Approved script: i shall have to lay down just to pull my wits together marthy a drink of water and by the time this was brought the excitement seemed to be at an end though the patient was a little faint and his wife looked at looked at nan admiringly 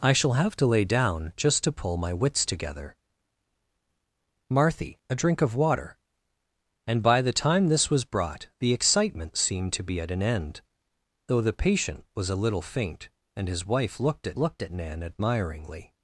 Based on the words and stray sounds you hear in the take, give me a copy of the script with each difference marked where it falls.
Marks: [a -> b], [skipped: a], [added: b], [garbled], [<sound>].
i shall have to lay down just to pull my wits together marthy a drink of water and by the time this was brought the excitement seemed to be at an end though the patient was a little faint and his wife looked at looked at nan admiringly